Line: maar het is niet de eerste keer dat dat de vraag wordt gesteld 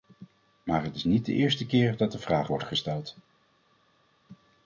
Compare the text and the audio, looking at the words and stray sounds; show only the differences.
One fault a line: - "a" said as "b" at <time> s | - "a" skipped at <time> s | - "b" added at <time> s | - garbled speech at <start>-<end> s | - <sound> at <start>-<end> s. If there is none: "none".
- "dat" skipped at 2.1 s